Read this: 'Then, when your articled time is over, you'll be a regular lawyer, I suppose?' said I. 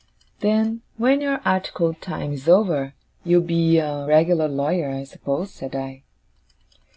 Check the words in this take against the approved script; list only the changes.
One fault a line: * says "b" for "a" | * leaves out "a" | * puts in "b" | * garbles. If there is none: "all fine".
all fine